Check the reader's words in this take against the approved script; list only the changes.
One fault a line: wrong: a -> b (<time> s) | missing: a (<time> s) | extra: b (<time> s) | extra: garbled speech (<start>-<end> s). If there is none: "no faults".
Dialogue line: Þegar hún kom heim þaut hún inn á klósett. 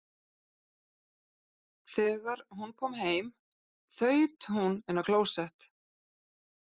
no faults